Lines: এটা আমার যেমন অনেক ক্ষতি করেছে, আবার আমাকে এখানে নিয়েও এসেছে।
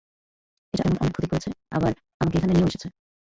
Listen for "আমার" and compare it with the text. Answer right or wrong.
wrong